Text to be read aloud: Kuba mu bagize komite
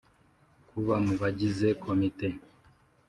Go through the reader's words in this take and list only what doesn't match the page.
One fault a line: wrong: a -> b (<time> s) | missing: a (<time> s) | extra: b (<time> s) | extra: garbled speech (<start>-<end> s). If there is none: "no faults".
no faults